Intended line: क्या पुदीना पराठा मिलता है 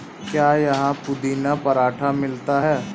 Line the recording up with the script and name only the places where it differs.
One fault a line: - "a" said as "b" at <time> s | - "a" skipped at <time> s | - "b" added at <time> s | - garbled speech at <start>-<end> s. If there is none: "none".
- "यहाँ" added at 0.6 s